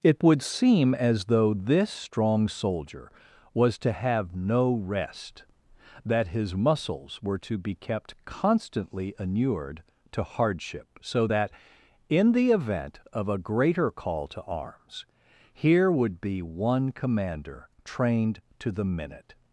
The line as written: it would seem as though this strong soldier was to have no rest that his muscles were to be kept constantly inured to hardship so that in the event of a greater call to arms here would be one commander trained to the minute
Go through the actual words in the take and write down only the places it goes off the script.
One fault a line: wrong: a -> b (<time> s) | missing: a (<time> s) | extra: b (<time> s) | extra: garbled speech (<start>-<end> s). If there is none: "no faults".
no faults